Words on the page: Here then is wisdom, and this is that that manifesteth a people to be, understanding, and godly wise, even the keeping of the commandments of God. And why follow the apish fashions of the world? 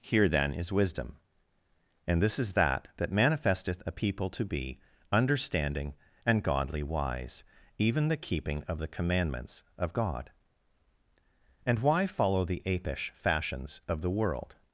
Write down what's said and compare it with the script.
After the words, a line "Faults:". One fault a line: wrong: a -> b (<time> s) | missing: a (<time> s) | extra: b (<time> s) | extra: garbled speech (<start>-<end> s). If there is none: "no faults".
Here then is wisdom, and this is that that manifesteth a people to be, understanding, and godly wise, even the keeping of the commandments of God. And why follow the apish fashions of the world?
Faults:
no faults